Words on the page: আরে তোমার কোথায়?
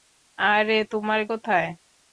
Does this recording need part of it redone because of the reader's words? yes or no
no